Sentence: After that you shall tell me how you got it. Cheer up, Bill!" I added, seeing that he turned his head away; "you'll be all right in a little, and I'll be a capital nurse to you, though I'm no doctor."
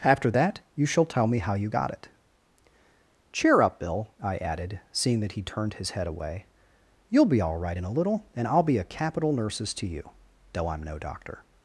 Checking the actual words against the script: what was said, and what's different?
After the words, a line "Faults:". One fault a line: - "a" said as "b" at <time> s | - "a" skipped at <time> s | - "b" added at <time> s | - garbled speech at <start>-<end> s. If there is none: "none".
After that you shall tell me how you got it. Cheer up, Bill!" I added, seeing that he turned his head away; "you'll be all right in a little, and I'll be a capital nurses to you, though I'm no doctor."
Faults:
- "nurse" said as "nurses" at 9.3 s